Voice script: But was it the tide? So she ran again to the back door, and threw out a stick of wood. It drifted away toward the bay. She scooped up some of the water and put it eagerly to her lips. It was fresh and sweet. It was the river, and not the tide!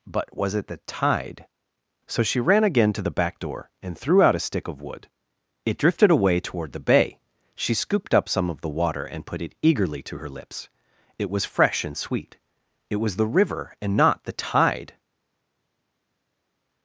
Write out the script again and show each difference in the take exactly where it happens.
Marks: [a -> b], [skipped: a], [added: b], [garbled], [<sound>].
But was it the tide? So she ran again to the back door, and threw out a stick of wood. It drifted away toward the bay. She scooped up some of the water and put it eagerly to her lips. It was fresh and sweet. It was the river, and not the tide!